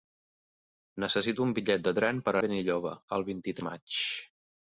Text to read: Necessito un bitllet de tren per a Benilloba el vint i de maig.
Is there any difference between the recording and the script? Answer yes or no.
no